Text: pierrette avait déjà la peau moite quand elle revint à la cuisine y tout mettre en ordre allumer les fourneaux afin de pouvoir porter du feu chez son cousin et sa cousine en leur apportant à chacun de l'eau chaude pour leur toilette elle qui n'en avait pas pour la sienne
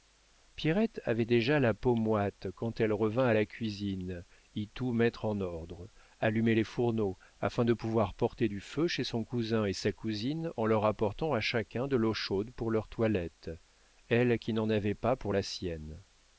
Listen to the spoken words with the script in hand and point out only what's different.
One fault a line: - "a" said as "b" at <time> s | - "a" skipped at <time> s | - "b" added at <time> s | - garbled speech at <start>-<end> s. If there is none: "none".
none